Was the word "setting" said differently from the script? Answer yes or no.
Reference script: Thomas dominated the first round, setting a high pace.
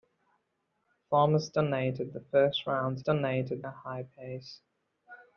yes